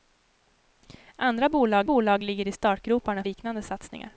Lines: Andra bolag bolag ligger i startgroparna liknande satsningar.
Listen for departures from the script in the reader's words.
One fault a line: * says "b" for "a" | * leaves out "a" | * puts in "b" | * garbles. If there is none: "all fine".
all fine